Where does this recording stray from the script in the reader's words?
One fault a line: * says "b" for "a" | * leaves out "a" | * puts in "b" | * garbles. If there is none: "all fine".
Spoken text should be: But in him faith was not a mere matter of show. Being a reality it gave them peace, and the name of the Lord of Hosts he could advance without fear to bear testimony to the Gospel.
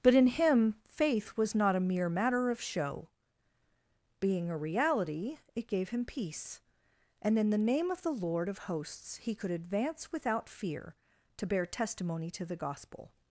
* says "him" for "them"
* puts in "in"